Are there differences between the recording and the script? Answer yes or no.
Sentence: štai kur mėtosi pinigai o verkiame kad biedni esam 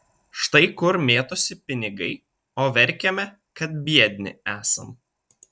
no